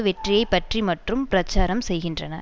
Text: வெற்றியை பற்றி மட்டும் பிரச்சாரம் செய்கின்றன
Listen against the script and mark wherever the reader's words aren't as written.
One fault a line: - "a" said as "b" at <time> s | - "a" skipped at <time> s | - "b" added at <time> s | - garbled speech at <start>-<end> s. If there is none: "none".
none